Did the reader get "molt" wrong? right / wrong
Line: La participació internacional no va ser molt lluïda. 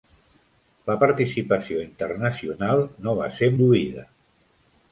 wrong